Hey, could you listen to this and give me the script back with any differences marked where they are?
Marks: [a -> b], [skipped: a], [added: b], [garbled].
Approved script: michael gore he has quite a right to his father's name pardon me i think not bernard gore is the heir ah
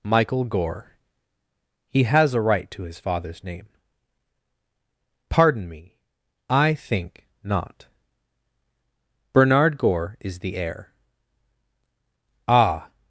michael gore he has [skipped: quite] a right to his father's name pardon me i think not bernard gore is the heir ah